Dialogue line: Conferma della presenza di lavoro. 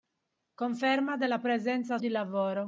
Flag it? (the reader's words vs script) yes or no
no